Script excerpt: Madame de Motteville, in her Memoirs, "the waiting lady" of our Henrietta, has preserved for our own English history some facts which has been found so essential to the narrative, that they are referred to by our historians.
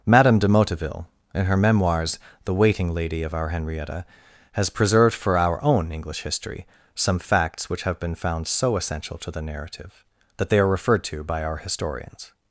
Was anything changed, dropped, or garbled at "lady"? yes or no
no